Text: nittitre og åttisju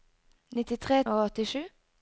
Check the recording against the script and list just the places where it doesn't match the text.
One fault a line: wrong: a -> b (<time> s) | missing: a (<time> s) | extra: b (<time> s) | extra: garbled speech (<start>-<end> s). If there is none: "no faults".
no faults